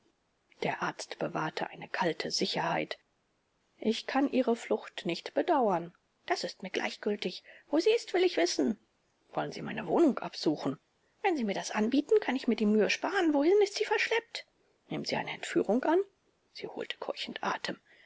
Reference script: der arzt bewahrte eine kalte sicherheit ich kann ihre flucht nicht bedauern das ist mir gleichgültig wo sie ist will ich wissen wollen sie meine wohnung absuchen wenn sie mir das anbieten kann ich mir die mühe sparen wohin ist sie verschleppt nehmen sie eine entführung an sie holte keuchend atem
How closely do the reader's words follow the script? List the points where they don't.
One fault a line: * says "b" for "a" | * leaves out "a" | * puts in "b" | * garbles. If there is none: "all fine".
all fine